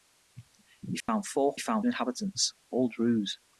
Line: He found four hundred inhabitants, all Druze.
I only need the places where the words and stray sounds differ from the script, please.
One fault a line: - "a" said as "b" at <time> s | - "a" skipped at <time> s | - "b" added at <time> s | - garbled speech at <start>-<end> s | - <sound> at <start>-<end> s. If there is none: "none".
- dropout at 1.0-1.1 s
- "hundred" said as "found" at 1.6 s